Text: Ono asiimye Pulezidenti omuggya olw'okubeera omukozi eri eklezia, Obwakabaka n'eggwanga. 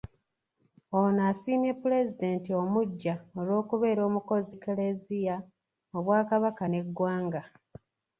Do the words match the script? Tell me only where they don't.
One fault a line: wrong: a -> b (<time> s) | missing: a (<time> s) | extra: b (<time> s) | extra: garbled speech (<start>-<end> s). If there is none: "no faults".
missing: eri (4.5 s)